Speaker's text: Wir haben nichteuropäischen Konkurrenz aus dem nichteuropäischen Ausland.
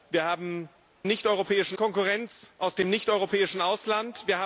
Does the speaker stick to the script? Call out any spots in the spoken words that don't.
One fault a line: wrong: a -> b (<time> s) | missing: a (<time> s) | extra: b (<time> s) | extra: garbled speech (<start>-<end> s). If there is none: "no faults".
no faults